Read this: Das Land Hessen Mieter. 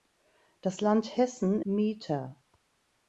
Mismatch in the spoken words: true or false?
false